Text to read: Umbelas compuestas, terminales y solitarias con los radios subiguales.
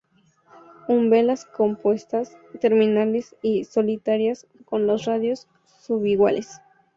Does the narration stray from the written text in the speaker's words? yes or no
no